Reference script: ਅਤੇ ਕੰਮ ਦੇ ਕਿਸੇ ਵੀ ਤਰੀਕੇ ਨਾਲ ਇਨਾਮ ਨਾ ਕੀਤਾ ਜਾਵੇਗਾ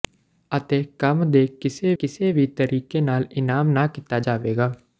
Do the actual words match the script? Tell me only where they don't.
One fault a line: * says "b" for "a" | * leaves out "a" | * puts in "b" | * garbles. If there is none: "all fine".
* puts in "ਕਿਸੇ"